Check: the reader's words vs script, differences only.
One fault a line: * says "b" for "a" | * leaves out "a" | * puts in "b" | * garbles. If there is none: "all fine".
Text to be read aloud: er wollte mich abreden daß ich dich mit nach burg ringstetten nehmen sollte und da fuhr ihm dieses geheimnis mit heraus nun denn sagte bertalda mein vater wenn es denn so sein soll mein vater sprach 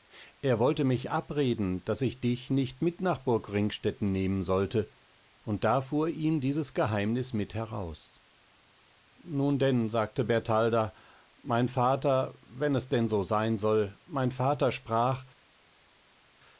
* puts in "nicht"